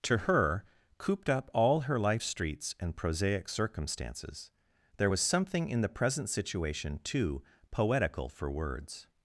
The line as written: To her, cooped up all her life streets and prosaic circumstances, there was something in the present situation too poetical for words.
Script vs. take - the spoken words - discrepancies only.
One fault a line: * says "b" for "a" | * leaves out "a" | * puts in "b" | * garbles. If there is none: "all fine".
all fine